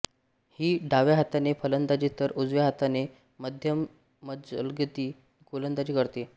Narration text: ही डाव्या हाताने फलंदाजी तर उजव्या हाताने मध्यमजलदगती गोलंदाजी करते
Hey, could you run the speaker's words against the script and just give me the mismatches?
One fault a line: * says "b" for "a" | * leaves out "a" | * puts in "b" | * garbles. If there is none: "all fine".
all fine